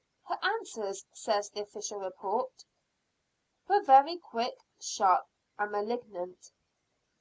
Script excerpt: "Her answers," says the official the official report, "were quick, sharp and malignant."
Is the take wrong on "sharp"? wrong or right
right